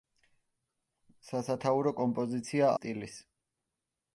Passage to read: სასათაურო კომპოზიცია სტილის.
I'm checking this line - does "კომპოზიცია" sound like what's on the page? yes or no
yes